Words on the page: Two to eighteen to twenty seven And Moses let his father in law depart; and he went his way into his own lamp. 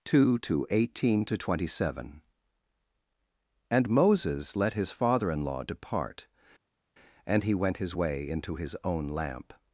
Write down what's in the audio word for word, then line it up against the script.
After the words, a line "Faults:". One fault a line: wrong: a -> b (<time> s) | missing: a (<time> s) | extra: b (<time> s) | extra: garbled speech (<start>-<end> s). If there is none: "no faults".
Two to eighteen to twenty seven And Moses let his father in law depart; and he went his way into his own lamp.
Faults:
no faults